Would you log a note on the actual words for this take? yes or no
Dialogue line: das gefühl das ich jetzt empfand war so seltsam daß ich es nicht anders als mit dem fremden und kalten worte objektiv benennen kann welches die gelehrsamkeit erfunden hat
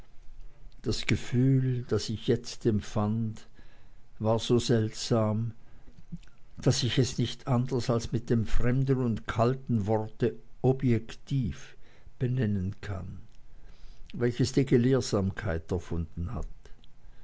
no